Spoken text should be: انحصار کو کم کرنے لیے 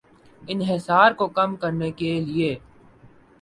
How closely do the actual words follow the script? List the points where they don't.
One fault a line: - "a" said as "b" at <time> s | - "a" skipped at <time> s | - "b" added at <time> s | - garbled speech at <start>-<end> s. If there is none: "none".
- "کے" added at 1.9 s